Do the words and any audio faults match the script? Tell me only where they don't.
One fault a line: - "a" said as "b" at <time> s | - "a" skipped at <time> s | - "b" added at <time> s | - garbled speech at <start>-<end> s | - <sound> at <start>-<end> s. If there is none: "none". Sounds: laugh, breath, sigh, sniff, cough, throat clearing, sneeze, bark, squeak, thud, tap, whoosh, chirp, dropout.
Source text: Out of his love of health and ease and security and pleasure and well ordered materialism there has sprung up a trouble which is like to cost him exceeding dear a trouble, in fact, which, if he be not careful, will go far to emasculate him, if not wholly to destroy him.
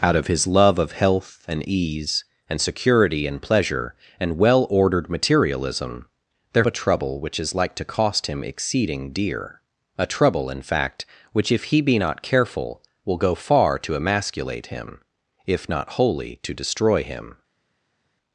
- "has sprung up" skipped at 6.6 s